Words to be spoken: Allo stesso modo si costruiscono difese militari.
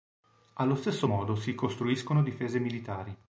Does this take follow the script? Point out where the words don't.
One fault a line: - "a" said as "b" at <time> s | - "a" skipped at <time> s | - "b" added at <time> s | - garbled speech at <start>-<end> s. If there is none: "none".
none